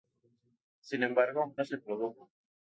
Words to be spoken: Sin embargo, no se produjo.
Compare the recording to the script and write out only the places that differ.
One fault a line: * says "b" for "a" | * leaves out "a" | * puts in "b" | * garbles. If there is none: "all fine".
all fine